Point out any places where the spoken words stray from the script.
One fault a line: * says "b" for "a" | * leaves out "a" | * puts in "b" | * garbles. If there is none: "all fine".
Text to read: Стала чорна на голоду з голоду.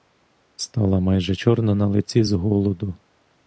* puts in "майже"
* says "лиці" for "голоду"